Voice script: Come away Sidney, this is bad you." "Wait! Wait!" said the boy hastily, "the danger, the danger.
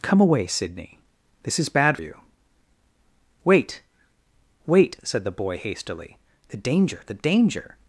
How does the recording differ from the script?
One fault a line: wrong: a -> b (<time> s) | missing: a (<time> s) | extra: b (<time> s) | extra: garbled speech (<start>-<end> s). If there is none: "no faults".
no faults